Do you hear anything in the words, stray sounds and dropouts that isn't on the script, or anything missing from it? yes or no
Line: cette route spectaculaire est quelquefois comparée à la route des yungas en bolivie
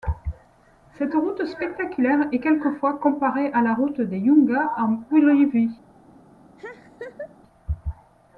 yes